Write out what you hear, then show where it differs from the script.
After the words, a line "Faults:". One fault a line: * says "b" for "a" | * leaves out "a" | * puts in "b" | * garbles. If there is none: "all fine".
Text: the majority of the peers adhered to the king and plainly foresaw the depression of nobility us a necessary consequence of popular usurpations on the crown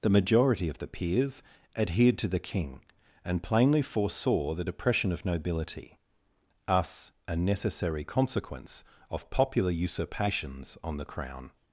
the majority of the peers adhered to the king and plainly foresaw the depression of nobility us a necessary consequence of popular usurpations on the crown
Faults:
all fine